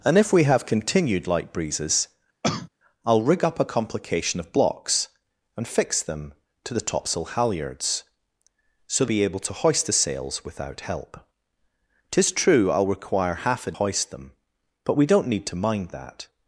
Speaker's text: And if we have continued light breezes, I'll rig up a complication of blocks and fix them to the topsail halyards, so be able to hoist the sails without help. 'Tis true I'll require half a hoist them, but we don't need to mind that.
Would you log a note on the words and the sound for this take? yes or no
yes